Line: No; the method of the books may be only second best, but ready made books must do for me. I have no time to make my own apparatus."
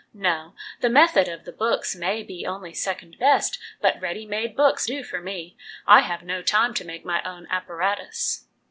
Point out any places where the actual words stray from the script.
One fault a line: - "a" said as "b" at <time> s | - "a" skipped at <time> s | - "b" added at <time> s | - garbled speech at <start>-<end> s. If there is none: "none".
- "must" skipped at 4.9 s